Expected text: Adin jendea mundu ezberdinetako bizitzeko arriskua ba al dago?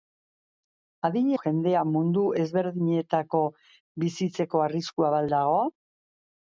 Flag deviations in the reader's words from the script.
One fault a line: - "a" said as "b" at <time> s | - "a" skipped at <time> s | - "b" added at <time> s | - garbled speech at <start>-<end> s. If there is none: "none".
none